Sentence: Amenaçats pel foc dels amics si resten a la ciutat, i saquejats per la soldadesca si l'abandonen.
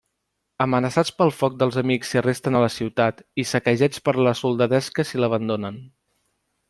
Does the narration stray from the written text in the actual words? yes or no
no